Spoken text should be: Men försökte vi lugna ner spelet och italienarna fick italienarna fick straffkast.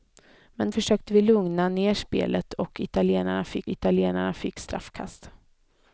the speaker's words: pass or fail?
pass